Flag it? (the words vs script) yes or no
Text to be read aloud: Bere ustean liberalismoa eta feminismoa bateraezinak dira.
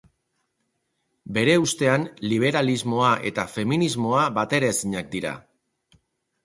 no